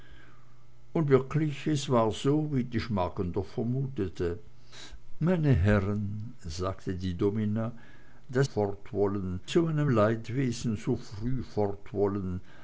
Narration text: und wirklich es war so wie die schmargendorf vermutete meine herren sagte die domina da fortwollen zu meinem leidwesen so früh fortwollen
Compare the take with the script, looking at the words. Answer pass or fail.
pass